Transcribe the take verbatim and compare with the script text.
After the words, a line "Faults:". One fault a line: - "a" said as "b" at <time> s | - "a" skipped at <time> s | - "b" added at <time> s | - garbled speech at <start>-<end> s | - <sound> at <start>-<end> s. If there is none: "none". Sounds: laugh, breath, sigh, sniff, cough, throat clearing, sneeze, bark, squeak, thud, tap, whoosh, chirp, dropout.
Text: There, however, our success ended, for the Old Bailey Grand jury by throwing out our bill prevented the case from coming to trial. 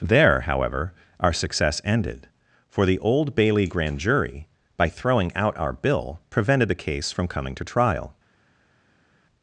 There, however, our success ended, for the Old Bailey Grand jury by throwing out our bill prevented the case from coming to trial.
Faults:
none